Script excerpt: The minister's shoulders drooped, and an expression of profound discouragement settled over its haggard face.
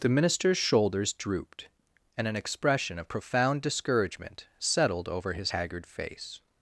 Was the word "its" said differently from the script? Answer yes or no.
yes